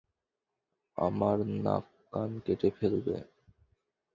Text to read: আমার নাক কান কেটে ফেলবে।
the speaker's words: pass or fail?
pass